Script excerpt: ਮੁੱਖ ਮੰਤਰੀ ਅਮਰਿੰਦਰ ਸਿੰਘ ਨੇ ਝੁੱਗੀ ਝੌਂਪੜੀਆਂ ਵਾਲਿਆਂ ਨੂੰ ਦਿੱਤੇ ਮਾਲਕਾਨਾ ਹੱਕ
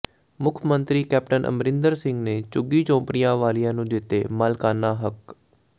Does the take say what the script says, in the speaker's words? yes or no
no